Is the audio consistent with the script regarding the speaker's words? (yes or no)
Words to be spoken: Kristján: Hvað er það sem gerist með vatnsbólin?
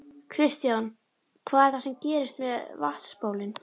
yes